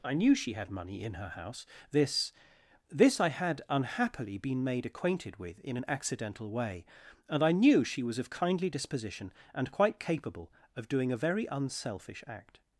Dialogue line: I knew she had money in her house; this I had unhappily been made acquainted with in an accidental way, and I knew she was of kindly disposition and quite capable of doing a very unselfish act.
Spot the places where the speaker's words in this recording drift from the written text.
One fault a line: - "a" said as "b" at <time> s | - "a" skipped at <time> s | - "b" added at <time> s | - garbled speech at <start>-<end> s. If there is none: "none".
- "this" added at 2.9 s